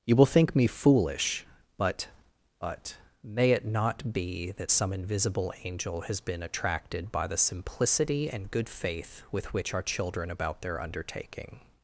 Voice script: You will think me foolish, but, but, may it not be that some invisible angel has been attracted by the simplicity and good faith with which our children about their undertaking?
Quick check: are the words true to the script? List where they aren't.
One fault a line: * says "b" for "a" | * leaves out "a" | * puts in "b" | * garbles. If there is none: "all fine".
all fine